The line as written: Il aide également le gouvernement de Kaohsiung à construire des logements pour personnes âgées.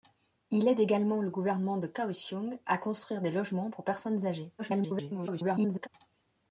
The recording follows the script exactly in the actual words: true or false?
false